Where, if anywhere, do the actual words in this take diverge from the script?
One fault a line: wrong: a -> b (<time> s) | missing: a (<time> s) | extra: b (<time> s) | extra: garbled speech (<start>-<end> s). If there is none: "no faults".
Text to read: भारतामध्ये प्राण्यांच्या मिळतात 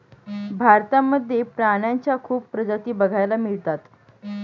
extra: खूप प्रजाती बघायला (2.2 s)